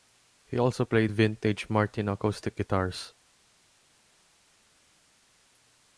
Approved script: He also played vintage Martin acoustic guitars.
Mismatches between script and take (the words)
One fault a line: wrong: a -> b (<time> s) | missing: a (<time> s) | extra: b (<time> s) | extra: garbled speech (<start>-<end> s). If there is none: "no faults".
no faults